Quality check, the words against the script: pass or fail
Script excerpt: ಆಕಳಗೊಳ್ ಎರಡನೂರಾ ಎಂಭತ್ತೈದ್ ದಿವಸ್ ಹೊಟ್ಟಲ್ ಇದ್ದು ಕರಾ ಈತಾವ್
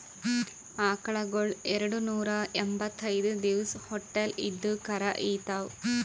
pass